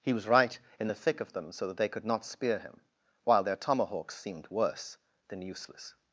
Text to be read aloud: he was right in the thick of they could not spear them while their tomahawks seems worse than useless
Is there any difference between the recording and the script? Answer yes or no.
yes